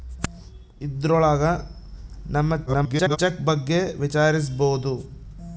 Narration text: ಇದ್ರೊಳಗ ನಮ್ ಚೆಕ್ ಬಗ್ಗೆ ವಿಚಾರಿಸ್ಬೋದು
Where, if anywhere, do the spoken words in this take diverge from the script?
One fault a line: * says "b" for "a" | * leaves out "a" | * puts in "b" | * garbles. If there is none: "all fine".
* garbles